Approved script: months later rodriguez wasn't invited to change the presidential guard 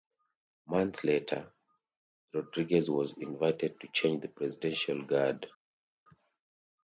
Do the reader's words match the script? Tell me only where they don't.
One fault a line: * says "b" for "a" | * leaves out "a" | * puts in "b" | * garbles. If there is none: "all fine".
* says "was" for "wasn't"